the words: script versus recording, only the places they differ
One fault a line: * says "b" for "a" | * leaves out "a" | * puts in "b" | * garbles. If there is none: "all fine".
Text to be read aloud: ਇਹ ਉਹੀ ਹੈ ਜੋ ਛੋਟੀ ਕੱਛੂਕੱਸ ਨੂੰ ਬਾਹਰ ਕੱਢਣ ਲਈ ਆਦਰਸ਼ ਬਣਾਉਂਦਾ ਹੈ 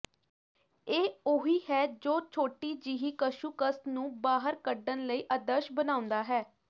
* puts in "ਜਿਹੀ"